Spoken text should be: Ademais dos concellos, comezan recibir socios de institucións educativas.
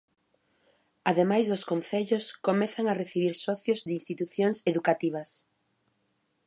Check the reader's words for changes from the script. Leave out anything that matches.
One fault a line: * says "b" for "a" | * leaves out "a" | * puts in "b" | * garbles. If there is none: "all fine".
* puts in "a"